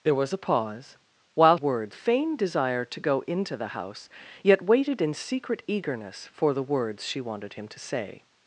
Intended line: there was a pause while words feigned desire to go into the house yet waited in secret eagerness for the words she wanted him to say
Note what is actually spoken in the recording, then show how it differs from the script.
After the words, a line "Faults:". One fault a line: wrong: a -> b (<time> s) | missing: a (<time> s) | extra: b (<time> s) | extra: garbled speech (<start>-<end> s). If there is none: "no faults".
there was a pause while words feigned desire to go into the house yet waited in secret eagerness for the words she wanted him to say
Faults:
no faults